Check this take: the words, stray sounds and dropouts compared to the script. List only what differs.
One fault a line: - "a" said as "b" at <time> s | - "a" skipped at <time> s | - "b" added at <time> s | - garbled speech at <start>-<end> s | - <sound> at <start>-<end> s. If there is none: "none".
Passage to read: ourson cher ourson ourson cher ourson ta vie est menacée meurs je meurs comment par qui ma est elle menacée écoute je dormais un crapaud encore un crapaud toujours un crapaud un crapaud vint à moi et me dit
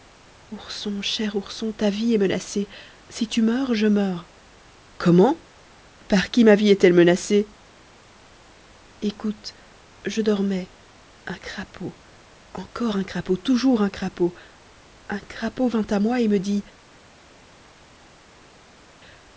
- "ourson cher ourson" skipped at 1.7 s
- "si tu" added at 3.1 s
- "vie" added at 6.5 s